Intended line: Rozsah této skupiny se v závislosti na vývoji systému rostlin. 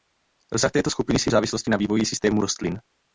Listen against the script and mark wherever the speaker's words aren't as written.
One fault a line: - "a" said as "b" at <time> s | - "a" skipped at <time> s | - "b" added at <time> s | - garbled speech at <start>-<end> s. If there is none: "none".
none